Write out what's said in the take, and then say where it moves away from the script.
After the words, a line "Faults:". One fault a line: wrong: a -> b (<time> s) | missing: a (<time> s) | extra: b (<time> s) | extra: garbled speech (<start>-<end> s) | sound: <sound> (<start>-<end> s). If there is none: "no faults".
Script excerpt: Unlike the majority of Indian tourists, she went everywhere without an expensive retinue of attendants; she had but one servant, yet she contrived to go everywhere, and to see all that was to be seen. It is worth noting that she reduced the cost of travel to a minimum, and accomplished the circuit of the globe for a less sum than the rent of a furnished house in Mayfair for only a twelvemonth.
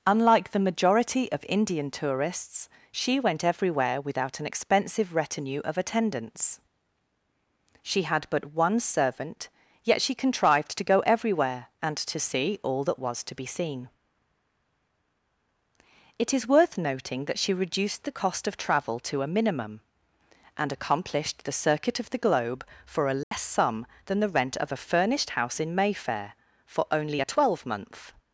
Unlike the majority of Indian tourists, she went everywhere without an expensive retinue of attendants; she had but one servant, yet she contrived to go everywhere, and to see all that was to be seen. It is worth noting that she reduced the cost of travel to a minimum, and accomplished the circuit of the globe for a less sum than the rent of a furnished house in Mayfair for only a twelvemonth.
Faults:
sound: dropout (23.2-23.3 s)